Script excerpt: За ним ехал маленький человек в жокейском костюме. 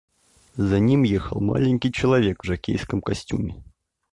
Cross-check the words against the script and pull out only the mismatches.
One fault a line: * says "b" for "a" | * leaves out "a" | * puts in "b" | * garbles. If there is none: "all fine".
all fine